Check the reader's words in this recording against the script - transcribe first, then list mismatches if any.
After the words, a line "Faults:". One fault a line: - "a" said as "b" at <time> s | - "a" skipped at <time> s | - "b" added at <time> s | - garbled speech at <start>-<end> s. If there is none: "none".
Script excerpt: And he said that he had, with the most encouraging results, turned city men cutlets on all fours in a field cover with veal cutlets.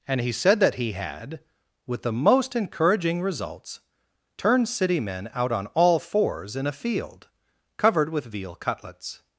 And he said that he had, with the most encouraging results, turned city men out on all fours in a field covered with veal cutlets.
Faults:
- "cutlets" said as "out" at 5.3 s
- "cover" said as "covered" at 7.8 s